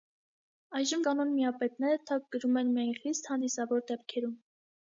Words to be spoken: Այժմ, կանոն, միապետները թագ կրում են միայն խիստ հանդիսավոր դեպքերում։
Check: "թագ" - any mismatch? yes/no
no